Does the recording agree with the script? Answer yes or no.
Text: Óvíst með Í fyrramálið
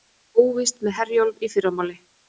no